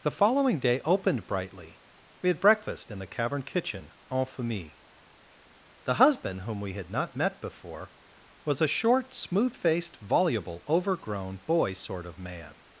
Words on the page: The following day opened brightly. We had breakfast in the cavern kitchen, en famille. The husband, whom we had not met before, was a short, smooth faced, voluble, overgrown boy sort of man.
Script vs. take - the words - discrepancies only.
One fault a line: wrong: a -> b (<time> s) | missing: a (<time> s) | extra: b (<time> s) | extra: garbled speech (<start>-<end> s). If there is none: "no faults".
no faults